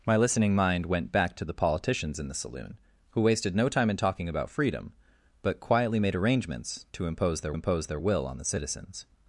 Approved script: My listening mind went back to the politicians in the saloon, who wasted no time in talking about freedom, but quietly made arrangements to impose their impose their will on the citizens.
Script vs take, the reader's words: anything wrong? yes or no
no